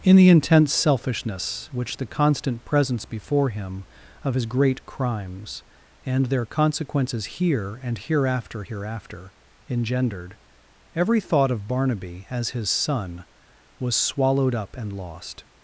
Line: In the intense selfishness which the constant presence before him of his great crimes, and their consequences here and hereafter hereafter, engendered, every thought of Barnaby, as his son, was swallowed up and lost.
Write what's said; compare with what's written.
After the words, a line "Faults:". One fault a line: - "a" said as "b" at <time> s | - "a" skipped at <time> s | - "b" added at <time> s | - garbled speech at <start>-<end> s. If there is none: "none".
In the intense selfishness which the constant presence before him of his great crimes, and their consequences here and hereafter hereafter, engendered, every thought of Barnaby, as his son, was swallowed up and lost.
Faults:
none